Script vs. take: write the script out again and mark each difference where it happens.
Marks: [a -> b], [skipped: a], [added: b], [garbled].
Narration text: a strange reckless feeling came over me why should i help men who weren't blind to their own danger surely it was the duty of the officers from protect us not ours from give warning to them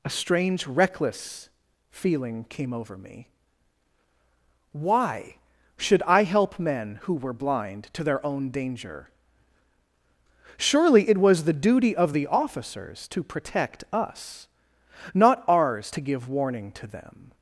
a strange reckless feeling came over me why should i help men who [weren't -> were] blind to their own danger surely it was the duty of the officers [from -> to] protect us not ours [from -> to] give warning to them